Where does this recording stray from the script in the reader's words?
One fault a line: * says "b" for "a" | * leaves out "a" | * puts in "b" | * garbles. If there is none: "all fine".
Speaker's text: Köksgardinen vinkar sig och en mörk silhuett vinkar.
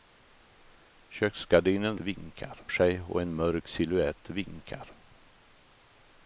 all fine